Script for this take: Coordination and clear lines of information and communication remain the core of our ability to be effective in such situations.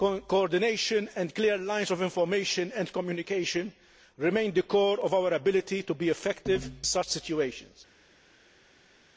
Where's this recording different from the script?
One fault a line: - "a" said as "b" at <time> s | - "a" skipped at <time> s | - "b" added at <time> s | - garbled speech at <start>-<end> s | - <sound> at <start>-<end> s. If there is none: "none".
- "in" skipped at 6.7 s